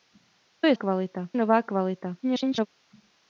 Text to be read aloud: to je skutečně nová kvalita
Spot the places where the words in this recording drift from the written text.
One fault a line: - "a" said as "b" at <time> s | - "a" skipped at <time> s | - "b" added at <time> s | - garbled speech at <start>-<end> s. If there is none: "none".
- "skutečně" said as "kvalita" at 0.7 s
- garbled speech at 2.2-2.7 s